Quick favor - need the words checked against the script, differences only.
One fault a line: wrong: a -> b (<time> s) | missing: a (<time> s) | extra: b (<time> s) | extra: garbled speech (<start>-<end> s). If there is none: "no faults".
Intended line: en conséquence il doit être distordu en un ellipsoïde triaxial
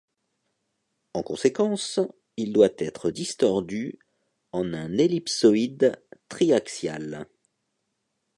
no faults